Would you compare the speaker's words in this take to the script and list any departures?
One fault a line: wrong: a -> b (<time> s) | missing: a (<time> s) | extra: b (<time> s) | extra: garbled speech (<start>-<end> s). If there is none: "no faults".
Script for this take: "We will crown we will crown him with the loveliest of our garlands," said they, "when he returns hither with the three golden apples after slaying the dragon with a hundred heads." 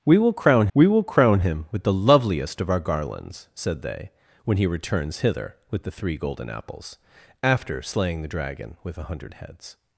no faults